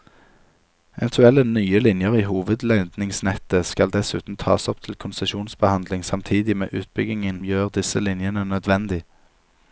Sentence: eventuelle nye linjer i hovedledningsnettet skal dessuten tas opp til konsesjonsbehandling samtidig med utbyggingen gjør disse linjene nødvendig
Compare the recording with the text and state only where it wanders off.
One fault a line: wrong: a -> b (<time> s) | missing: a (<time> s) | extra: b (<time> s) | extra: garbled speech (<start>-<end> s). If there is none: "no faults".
no faults